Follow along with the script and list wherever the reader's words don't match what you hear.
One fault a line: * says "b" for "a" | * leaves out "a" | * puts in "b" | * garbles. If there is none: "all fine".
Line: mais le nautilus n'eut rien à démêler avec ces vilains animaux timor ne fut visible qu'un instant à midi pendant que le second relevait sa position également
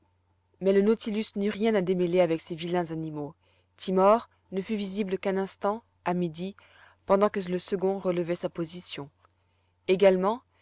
all fine